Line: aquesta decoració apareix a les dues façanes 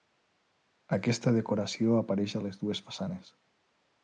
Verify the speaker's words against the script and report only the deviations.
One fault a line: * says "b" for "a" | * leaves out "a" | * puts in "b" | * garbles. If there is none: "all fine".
all fine